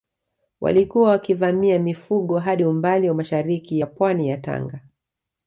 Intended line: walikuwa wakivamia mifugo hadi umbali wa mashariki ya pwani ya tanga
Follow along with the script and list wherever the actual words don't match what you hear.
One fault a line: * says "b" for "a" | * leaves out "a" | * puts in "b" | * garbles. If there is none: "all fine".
all fine